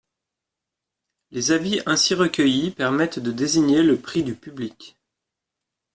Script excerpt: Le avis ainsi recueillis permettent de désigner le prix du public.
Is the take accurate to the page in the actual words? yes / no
no